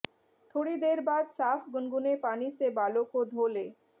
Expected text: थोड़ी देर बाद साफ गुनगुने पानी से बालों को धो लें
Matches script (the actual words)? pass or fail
pass